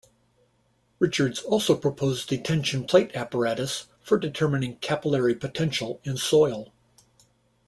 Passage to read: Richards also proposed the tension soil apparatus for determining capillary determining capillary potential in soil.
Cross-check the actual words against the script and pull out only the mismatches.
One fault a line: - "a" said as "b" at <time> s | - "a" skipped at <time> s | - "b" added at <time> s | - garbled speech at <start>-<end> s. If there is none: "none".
- "soil" said as "plate" at 2.8 s
- "determining capillary" skipped at 5.3 s